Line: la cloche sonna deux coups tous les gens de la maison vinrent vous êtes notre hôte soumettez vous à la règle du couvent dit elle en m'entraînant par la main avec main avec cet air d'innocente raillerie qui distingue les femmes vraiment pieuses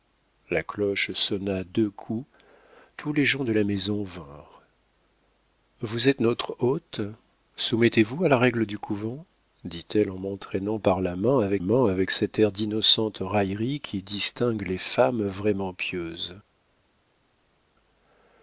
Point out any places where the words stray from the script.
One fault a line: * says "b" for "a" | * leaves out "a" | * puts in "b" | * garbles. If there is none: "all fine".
all fine